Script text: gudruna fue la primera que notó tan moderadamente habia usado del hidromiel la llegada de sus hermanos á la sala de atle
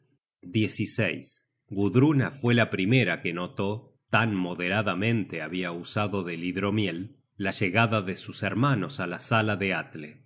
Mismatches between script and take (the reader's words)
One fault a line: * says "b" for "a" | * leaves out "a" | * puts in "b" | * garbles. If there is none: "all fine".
all fine